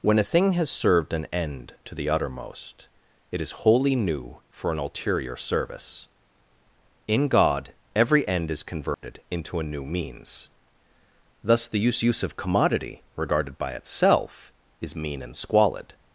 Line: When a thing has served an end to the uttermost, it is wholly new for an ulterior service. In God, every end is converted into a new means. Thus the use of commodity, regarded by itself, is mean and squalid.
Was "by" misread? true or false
false